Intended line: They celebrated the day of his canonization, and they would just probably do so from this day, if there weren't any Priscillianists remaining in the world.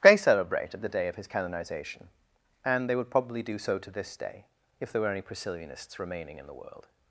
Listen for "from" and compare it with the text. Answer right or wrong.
wrong